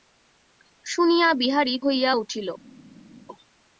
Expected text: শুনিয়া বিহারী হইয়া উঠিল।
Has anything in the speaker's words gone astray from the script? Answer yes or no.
no